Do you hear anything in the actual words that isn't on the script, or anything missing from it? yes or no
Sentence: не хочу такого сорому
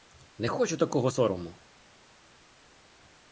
no